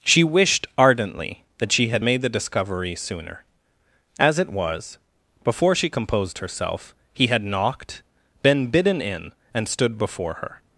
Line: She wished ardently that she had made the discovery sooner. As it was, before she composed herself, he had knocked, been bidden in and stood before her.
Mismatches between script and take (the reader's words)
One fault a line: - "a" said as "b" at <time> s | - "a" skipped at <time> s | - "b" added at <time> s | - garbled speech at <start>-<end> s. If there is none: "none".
none